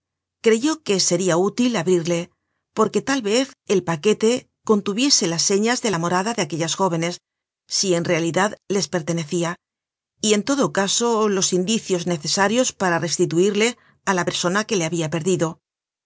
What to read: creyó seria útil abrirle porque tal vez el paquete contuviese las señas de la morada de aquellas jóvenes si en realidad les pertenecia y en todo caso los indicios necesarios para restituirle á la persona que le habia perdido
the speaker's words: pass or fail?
fail